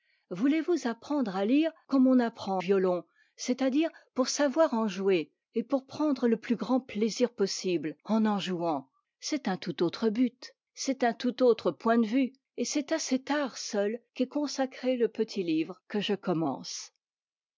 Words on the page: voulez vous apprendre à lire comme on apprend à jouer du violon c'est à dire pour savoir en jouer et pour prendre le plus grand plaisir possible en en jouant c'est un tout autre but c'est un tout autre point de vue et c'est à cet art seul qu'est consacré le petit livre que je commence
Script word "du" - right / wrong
wrong